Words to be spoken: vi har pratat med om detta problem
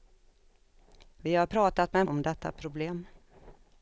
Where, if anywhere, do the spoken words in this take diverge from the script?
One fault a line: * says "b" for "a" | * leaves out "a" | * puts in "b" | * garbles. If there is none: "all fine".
all fine